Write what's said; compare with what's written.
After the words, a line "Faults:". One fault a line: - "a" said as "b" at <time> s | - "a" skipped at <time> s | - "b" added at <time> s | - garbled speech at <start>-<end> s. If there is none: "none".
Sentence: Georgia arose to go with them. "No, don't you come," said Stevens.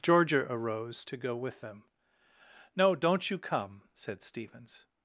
Georgia arose to go with them. "No, don't you come," said Stevens.
Faults:
none